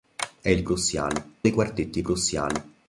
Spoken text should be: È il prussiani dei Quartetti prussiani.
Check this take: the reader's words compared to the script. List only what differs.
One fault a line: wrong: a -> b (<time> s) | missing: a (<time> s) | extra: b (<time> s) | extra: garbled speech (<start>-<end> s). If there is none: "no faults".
no faults